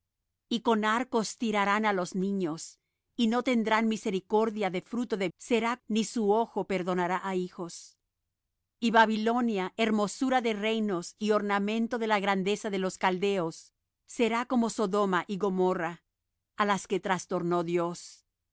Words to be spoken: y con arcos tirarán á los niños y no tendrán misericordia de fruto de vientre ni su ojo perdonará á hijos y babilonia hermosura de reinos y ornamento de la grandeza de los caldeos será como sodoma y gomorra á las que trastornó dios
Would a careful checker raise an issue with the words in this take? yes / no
yes